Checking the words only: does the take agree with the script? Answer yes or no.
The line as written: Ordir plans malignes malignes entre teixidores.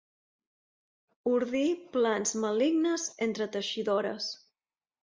no